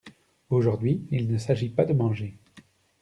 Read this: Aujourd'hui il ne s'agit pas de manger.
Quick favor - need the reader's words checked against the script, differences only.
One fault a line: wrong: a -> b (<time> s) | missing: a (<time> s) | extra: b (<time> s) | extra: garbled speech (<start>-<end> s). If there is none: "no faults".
no faults